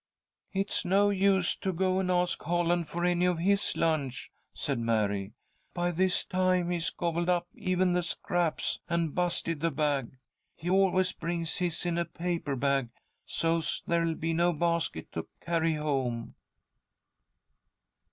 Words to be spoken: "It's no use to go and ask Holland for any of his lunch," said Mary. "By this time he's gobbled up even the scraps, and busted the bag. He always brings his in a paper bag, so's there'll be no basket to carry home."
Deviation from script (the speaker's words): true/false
false